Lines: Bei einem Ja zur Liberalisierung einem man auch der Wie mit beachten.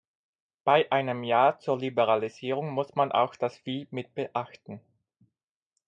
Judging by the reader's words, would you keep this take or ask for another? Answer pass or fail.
fail